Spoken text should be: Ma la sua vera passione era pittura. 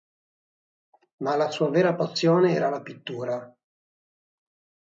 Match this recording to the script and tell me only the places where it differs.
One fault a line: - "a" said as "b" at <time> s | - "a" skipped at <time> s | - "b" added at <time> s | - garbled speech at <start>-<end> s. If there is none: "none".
- "la" added at 2.7 s